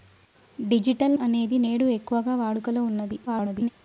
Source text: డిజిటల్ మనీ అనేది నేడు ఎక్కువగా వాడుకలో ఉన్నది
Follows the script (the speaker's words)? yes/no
no